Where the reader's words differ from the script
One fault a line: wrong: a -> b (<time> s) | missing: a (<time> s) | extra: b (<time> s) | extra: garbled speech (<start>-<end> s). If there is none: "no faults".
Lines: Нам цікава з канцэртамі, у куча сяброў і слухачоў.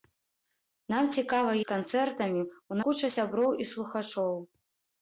no faults